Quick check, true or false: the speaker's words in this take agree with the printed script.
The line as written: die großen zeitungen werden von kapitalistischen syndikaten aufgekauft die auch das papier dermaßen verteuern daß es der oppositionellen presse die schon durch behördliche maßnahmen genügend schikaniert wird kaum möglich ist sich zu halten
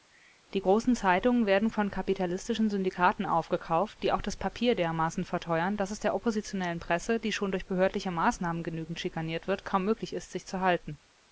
true